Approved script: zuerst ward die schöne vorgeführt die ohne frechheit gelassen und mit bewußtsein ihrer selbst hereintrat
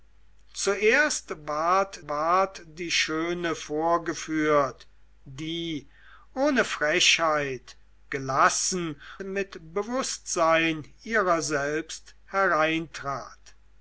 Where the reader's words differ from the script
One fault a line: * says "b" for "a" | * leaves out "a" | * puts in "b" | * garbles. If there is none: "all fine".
* puts in "ward"
* leaves out "und"